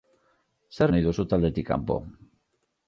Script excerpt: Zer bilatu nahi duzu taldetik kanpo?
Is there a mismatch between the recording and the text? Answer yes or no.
yes